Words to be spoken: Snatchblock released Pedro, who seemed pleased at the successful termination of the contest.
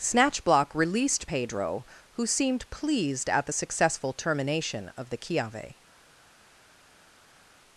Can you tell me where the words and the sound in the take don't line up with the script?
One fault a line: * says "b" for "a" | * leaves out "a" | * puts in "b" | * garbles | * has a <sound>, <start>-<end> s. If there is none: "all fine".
* says "chiave" for "contest"